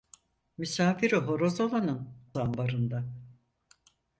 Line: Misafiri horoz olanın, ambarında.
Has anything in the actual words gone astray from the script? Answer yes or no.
no